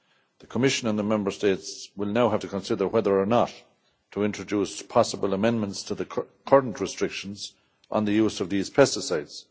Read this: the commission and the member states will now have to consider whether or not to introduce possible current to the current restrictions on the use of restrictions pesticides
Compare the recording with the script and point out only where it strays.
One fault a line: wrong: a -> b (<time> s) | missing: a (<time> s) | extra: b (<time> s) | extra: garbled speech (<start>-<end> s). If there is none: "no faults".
wrong: current -> amendments (5.3 s)
wrong: restrictions -> these (8.5 s)